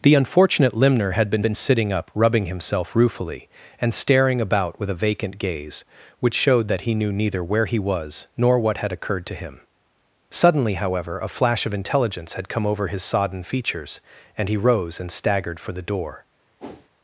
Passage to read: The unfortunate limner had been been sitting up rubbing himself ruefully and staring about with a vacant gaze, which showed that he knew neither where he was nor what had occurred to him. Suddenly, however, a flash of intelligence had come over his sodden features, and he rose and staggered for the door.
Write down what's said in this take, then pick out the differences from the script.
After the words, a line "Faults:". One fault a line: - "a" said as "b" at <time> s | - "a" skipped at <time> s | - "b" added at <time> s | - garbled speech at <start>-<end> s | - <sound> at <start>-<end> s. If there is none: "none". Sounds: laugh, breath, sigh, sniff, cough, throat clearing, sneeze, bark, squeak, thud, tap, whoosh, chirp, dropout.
The unfortunate limner had been been sitting up rubbing himself ruefully and staring about with a vacant gaze, which showed that he knew neither where he was nor what had occurred to him. Suddenly, however, a flash of intelligence had come over his sodden features, and he rose and staggered for the door.
Faults:
- whoosh at 16.6-16.9 s